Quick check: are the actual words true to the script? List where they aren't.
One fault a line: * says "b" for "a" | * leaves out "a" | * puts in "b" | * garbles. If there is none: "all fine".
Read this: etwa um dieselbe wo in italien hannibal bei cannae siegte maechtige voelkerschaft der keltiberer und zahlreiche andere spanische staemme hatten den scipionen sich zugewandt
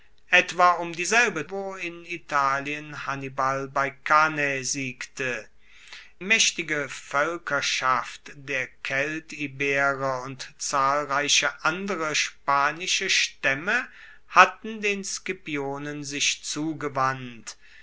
all fine